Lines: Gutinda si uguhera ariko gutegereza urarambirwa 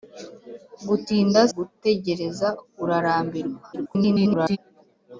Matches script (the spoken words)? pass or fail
fail